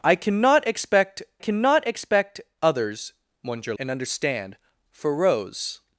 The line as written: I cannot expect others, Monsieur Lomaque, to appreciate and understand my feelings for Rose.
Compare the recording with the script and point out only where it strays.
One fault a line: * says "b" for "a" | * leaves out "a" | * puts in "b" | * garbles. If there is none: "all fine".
* puts in "cannot expect"
* leaves out "Lomaque to appreciate"
* leaves out "my feelings"